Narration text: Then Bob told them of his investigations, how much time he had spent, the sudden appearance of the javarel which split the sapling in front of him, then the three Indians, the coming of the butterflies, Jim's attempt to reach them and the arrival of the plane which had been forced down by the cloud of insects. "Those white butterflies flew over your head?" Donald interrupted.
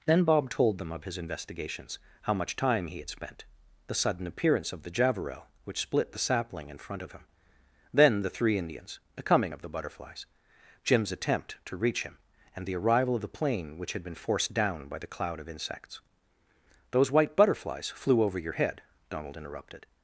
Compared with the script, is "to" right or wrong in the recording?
right